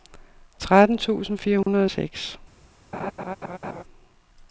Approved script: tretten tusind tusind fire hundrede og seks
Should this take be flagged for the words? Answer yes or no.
yes